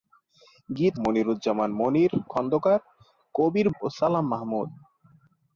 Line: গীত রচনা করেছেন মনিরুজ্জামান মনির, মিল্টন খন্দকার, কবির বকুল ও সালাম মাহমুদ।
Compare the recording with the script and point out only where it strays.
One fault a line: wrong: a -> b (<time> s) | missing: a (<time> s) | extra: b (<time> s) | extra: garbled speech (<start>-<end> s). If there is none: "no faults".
missing: রচনা করেছেন (0.9 s)
missing: মিল্টন (2.1 s)
missing: বকুল (3.7 s)